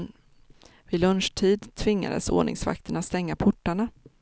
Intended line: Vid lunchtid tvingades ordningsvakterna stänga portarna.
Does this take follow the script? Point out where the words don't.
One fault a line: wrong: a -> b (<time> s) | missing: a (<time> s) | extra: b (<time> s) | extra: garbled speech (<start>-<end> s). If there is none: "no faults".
no faults